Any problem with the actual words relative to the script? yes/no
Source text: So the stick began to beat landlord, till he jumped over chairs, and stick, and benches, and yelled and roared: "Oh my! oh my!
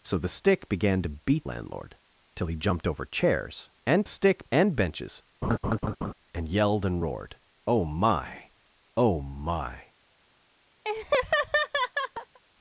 no